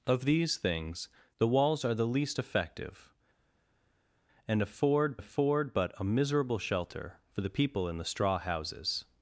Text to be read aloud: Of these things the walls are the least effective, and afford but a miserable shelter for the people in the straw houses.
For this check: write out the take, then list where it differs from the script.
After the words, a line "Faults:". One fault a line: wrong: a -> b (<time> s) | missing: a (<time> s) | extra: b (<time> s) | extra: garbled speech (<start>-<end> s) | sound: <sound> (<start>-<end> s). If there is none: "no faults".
Of these things the walls are the least effective, and afford afford but a miserable shelter for the people in the straw houses.
Faults:
extra: afford (5.2 s)